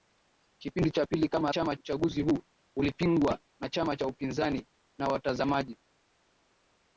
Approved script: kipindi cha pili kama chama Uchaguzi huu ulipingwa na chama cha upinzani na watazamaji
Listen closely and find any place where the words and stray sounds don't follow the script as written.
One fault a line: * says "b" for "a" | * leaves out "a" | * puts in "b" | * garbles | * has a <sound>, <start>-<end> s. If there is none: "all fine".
all fine